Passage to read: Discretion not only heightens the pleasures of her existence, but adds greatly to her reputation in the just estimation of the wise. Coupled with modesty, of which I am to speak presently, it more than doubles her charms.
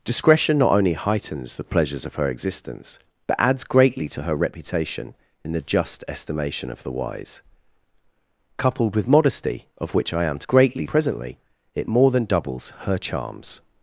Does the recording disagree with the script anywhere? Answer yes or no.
yes